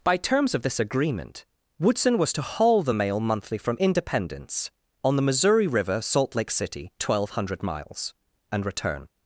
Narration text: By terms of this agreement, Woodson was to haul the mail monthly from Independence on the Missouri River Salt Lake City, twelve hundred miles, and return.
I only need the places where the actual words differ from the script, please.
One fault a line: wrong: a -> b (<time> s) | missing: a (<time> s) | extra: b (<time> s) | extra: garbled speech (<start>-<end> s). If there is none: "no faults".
no faults